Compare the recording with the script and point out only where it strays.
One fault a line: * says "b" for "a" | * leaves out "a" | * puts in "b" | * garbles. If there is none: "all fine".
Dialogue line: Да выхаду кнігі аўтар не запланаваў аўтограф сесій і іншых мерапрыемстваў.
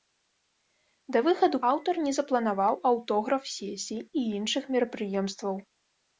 * leaves out "кнігі"